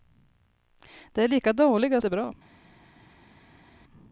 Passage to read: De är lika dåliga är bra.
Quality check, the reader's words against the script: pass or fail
pass